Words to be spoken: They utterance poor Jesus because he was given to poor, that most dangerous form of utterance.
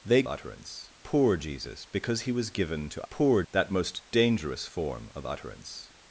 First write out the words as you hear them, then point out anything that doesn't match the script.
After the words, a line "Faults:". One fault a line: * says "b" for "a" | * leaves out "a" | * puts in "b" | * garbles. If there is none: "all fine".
They utterance poor Jesus because he was given to poor, that most dangerous form of utterance.
Faults:
all fine